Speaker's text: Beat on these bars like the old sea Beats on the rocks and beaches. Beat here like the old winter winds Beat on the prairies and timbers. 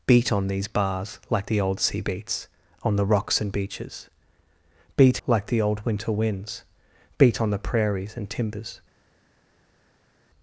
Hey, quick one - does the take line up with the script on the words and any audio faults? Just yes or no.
no